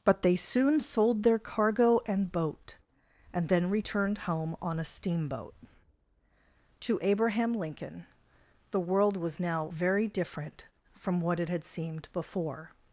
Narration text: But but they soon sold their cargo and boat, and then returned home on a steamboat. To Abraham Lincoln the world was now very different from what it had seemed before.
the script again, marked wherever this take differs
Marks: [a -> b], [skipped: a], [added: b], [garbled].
But [skipped: but] they soon sold their cargo and boat, and then returned home on a steamboat. To Abraham Lincoln the world was now very different from what it had seemed before.